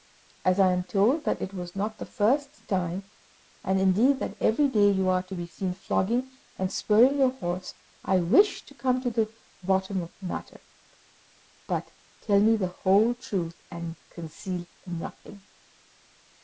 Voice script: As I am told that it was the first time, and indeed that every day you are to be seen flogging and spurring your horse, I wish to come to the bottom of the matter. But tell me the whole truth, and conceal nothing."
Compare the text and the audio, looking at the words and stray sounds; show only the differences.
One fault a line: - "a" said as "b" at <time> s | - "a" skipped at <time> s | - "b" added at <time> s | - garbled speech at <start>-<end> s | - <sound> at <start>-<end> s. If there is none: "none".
- "not" added at 1.8 s